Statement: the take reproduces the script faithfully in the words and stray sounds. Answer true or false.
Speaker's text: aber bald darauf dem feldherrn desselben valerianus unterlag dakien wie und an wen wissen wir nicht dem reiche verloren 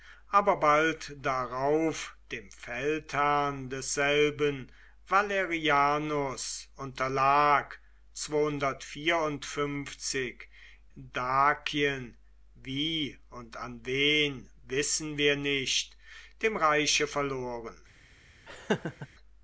false